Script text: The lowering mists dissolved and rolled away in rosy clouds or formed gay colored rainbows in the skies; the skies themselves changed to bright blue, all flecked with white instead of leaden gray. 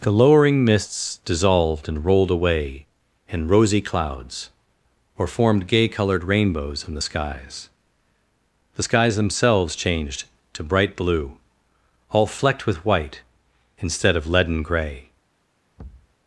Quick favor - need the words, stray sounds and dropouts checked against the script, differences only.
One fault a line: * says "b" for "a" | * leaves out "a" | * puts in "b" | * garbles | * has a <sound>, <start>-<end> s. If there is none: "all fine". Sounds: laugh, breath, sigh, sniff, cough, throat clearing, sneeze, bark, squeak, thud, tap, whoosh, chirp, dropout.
* has a thud, 15.8-16.1 s